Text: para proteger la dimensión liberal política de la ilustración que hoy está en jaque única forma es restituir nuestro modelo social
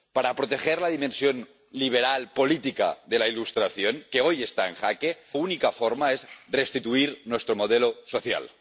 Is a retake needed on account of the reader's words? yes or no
no